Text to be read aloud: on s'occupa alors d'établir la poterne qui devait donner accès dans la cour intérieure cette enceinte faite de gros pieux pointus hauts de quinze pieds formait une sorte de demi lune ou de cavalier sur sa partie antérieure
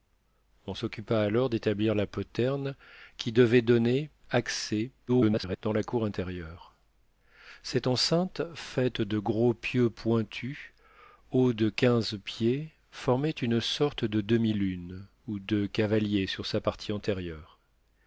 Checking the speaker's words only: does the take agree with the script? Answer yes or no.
no